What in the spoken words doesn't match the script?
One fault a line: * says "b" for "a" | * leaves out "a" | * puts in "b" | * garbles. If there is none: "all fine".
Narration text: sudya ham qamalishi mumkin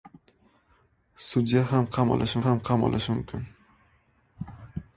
* puts in "ham qamalishi"